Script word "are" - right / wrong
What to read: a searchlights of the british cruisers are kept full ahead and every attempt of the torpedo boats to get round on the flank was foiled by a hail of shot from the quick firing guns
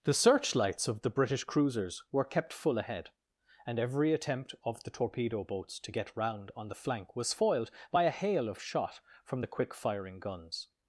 wrong